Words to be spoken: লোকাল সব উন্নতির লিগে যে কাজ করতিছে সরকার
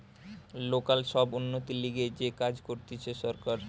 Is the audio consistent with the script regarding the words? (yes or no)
yes